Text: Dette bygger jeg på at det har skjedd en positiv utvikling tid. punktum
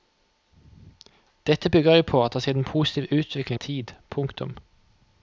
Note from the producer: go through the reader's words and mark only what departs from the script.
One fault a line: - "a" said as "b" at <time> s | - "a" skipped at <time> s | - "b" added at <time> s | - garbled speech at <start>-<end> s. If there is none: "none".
none